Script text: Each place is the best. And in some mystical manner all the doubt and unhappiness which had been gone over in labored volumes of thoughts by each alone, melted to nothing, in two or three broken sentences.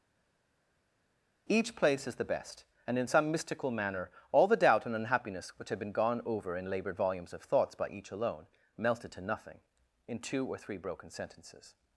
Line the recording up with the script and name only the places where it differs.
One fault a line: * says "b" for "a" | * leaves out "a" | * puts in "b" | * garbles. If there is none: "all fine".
all fine